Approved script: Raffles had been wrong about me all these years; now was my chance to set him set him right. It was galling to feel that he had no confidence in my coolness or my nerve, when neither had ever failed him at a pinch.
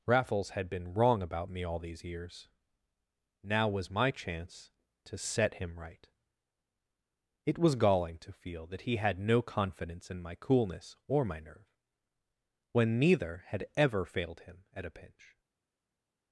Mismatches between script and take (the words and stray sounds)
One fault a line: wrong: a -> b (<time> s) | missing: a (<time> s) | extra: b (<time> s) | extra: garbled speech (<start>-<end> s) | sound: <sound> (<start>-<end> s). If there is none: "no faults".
missing: set him (5.8 s)